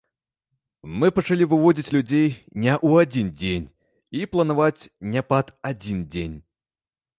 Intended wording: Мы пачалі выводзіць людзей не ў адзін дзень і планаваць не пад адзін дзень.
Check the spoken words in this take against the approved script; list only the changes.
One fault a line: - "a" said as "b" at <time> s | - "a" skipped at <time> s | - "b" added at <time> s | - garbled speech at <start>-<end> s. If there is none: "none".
none